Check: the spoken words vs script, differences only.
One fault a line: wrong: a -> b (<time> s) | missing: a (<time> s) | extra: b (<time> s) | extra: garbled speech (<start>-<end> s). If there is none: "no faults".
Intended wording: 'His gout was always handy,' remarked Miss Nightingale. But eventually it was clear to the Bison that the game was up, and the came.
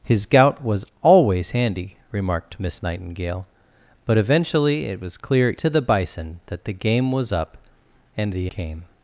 no faults